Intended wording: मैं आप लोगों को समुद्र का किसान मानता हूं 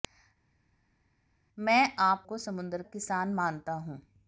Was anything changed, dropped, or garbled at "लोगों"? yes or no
yes